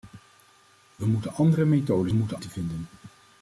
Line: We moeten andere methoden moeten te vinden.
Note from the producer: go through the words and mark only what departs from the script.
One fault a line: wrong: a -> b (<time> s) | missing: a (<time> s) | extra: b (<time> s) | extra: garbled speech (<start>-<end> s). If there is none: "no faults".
no faults